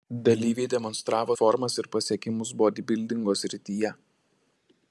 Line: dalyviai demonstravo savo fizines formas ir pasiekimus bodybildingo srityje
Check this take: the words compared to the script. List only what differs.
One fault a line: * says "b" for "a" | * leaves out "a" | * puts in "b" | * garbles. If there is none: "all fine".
* leaves out "savo fizines"